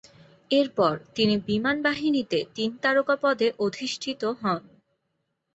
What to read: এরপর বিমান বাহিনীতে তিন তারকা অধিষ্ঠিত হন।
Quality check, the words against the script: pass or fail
fail